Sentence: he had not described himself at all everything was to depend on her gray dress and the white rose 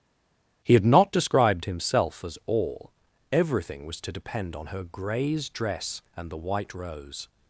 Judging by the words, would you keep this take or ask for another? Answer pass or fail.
fail